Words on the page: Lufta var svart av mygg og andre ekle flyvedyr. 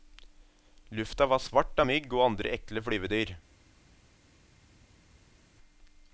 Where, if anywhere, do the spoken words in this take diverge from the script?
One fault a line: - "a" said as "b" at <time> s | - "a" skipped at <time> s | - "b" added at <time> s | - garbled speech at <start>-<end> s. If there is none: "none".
none